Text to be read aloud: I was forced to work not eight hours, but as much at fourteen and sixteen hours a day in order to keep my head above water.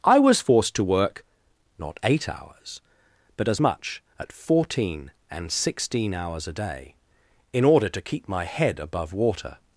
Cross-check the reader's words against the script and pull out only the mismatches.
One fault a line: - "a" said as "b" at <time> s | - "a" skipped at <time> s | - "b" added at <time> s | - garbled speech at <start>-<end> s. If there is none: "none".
none